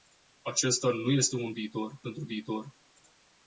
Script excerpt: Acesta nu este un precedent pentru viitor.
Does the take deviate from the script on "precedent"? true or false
true